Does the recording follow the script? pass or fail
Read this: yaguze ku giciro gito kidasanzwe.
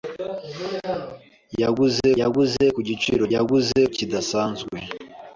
fail